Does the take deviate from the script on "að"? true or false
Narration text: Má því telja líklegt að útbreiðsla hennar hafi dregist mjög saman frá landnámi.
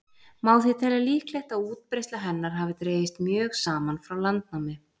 false